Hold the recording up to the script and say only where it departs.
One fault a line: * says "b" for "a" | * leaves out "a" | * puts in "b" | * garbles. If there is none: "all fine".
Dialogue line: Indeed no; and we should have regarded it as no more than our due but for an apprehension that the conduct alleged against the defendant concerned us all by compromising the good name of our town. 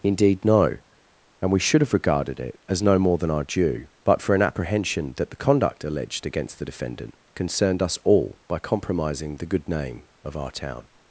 all fine